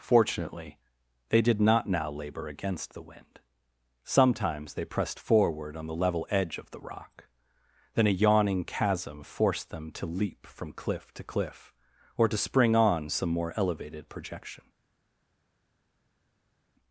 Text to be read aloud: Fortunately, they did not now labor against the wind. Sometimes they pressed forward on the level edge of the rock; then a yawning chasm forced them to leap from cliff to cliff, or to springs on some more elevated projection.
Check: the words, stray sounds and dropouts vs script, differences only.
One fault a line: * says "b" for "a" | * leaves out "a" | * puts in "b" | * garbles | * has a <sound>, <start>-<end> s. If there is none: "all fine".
* says "spring" for "springs"